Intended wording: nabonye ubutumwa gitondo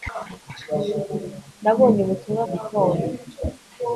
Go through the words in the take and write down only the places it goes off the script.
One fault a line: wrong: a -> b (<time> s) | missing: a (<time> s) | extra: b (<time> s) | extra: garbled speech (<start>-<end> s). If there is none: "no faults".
no faults